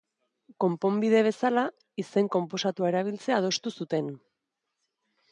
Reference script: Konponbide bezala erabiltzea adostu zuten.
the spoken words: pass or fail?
fail